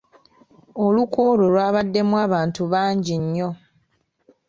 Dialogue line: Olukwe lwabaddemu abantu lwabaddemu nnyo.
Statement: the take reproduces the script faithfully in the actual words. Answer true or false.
false